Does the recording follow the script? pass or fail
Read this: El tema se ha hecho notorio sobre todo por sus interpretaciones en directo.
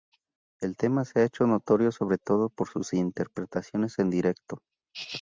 pass